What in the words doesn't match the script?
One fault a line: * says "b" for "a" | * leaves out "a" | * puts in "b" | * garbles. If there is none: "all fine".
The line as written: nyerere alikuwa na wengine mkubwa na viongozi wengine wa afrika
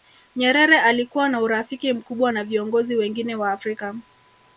* says "urafiki" for "wengine"